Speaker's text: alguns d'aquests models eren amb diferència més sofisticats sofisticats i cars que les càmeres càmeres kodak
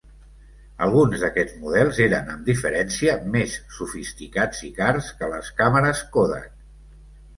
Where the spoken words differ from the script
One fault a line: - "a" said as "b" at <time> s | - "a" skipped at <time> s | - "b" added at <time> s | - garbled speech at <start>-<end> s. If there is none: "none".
- "sofisticats" skipped at 4.7 s
- "càmeres" skipped at 6.0 s